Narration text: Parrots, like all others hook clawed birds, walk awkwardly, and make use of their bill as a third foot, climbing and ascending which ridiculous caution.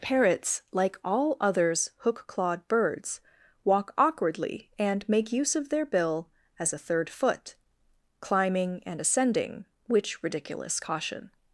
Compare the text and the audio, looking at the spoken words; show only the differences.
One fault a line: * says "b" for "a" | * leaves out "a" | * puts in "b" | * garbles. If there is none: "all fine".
all fine